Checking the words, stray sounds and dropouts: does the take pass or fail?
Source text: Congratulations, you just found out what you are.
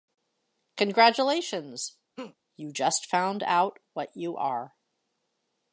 fail